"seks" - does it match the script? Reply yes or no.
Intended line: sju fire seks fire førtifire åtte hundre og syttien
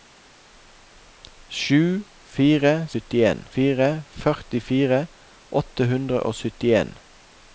no